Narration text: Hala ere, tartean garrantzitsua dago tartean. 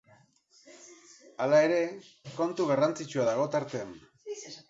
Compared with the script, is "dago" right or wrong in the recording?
right